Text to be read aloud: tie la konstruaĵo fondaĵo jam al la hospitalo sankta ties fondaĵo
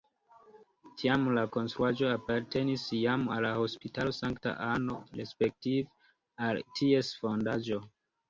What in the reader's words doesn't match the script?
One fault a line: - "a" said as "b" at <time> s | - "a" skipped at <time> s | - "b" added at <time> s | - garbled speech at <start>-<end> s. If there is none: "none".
- "tie" said as "tiam" at 1.0 s
- "fondaĵo" said as "apartenis" at 2.1 s
- "anno respektive al" added at 4.7 s